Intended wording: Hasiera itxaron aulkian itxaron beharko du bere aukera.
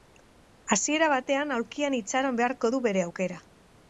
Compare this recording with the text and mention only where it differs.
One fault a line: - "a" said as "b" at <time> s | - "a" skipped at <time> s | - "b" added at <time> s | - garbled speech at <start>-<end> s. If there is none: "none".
- "itxaron" said as "batean" at 1.1 s